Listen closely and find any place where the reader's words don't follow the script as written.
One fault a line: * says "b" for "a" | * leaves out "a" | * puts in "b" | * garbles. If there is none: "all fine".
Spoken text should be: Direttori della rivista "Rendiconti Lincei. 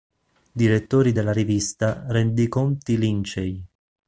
all fine